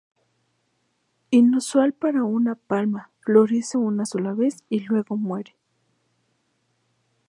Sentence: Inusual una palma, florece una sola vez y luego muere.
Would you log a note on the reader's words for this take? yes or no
yes